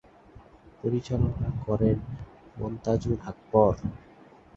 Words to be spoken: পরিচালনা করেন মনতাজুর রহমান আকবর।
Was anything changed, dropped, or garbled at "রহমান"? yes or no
yes